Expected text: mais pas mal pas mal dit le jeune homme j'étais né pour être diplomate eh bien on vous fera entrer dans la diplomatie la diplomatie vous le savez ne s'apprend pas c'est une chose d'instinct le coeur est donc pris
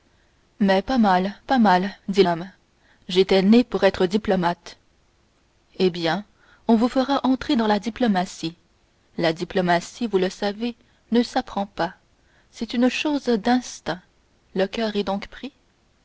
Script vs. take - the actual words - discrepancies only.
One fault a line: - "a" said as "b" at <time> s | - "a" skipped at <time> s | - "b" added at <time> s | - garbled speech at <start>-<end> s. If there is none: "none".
- "le jeune" skipped at 2.2 s